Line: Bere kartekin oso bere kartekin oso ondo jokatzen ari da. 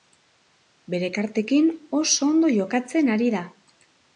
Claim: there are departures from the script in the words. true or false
true